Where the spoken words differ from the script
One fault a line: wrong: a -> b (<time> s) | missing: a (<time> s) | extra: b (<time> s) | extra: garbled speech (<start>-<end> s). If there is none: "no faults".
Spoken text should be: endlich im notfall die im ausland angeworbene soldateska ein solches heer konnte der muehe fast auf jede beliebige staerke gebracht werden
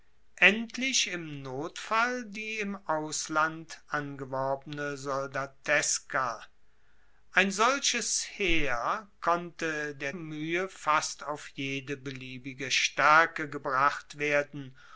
no faults